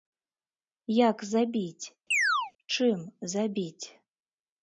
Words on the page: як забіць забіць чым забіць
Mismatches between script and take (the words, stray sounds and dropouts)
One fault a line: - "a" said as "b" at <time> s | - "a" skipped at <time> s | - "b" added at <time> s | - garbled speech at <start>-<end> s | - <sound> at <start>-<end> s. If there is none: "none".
- "забіць" skipped at 1.9 s
- chirp at 2.1-2.5 s